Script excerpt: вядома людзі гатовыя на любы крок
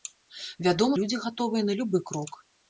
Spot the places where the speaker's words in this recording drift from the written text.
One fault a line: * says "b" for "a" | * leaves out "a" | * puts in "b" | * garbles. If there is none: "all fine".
all fine